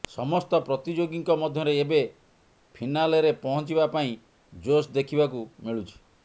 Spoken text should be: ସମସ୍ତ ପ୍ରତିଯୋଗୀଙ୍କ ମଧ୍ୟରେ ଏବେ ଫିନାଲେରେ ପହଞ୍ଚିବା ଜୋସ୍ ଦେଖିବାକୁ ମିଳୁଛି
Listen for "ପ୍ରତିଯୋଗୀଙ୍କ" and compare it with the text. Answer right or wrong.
right